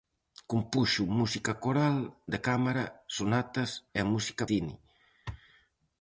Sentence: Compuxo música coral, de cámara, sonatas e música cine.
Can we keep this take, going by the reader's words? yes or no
yes